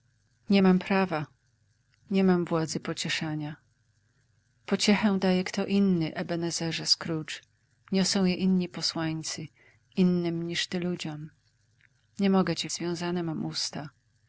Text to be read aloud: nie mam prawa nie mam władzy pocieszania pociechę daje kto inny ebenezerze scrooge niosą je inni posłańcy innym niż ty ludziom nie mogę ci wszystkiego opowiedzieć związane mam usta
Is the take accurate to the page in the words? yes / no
no